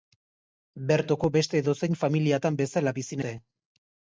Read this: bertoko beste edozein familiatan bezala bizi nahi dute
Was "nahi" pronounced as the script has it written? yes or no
no